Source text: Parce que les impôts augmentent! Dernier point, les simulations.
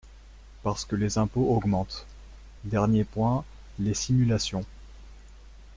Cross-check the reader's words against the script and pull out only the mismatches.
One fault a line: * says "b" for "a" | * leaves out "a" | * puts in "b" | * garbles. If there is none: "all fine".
all fine